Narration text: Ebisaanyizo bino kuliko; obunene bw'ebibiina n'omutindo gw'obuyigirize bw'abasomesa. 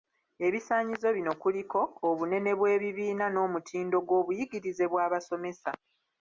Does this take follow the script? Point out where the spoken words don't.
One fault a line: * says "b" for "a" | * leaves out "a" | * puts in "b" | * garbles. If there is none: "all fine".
all fine